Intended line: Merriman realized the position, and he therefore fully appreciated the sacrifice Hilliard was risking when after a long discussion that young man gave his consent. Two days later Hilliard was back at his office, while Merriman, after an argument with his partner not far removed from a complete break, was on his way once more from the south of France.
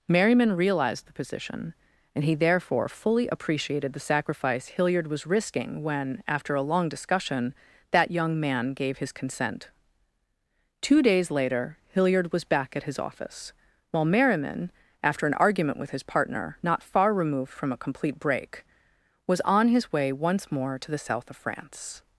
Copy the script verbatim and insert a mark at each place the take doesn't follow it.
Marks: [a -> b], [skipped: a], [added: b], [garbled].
Merriman realized the position, and he therefore fully appreciated the sacrifice Hilliard was risking when after a long discussion that young man gave his consent. Two days later Hilliard was back at his office, while Merriman, after an argument with his partner not far removed from a complete break, was on his way once more [from -> to] the south of France.